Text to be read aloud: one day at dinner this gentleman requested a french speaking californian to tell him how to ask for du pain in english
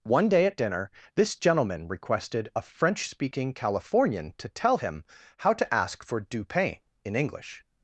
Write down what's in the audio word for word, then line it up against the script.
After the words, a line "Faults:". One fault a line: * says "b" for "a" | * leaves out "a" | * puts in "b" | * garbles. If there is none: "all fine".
one day at dinner this gentleman requested a french speaking californian to tell him how to ask for du pain in english
Faults:
all fine